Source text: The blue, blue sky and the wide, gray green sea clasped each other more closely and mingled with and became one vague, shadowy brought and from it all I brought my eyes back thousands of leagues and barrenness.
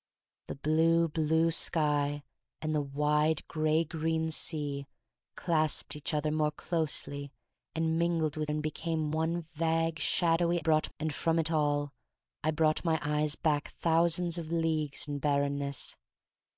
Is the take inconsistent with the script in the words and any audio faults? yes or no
no